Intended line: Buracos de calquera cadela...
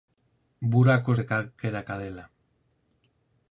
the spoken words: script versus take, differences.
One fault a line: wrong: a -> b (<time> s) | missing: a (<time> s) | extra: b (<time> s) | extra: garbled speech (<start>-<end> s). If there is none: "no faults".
no faults